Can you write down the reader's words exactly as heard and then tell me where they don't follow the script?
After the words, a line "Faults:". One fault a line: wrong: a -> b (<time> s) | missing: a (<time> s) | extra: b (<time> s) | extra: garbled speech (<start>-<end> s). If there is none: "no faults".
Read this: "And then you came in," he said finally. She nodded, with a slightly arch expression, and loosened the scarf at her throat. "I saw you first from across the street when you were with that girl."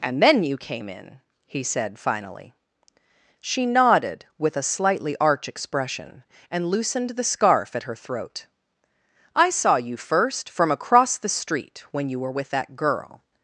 "And then you came in," he said finally. She nodded, with a slightly arch expression, and loosened the scarf at her throat. "I saw you first from across the street when you were with that girl."
Faults:
no faults